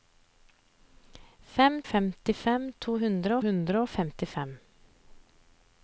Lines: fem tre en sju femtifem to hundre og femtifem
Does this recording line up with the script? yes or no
no